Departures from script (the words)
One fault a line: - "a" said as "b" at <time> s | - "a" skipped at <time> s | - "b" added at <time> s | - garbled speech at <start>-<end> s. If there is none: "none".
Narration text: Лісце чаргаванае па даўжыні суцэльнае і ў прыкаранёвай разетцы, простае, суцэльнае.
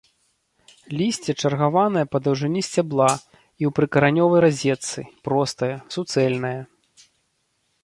- "суцэльнае" said as "сцябла" at 2.7 s